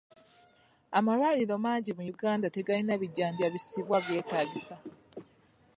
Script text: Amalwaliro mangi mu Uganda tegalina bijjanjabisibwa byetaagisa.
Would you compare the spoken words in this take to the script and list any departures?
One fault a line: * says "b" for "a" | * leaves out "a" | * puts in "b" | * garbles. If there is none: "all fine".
all fine